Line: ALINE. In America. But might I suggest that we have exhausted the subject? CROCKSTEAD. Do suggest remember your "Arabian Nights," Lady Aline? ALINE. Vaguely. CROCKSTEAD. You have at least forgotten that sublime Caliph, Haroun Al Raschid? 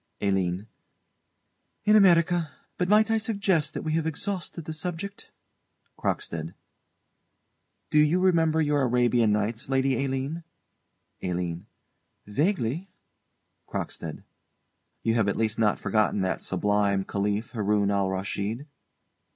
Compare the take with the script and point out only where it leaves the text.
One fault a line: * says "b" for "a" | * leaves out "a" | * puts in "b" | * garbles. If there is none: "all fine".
* says "you" for "suggest"
* puts in "not"